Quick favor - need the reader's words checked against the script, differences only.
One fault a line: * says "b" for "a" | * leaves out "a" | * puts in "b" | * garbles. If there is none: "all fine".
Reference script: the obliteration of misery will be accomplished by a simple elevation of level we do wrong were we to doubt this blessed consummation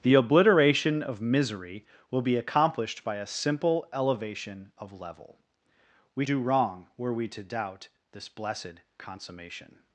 all fine